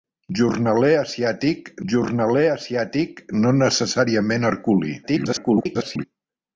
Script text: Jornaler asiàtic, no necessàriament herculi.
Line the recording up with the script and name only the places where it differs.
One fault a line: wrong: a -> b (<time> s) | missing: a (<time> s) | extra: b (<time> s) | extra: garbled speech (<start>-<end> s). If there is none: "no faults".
extra: jornaler asiàtic (1.9 s)
extra: garbled speech (5.0-6.0 s)